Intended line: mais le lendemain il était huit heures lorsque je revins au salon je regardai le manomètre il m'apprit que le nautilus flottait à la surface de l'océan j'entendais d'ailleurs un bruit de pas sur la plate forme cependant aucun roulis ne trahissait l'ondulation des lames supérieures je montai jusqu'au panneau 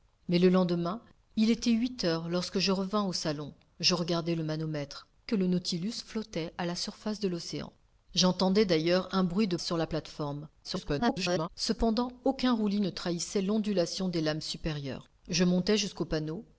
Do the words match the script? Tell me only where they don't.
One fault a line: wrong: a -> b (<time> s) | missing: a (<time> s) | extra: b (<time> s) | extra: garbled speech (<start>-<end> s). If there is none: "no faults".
missing: il m'apprit (5.1 s)
missing: pas (9.6 s)
extra: garbled speech (10.6-11.5 s)